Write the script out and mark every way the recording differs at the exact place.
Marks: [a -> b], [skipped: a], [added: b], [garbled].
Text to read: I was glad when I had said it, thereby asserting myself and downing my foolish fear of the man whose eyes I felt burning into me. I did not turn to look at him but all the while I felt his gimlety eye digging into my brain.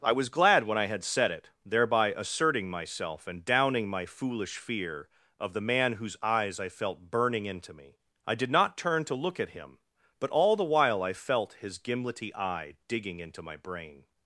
I was glad when I had said it, thereby asserting myself and downing my foolish fear of the man whose eyes I felt burning into me. I did not turn to look at him but all the while I felt his gimlety eye digging into my brain.